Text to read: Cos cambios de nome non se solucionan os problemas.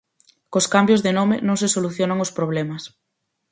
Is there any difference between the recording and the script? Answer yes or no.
no